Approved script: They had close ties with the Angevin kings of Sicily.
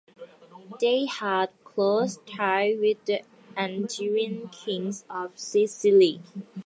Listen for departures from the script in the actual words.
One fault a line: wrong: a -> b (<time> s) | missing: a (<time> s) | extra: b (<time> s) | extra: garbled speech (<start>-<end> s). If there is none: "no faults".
no faults